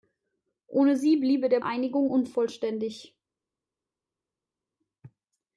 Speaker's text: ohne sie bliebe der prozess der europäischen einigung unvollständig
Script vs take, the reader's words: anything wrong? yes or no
yes